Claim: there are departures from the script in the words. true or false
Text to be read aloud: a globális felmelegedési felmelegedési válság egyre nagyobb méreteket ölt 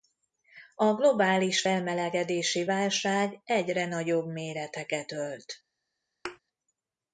true